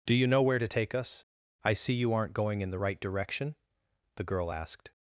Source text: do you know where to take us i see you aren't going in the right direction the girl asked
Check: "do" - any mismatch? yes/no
no